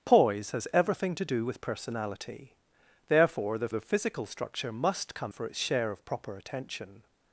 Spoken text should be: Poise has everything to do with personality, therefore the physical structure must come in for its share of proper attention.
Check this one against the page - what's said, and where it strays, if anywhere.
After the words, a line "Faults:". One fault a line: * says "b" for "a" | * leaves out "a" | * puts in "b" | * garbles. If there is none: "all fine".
Poise has everything to do with personality, therefore the the physical structure must come for its share of proper attention.
Faults:
* puts in "the"
* leaves out "in"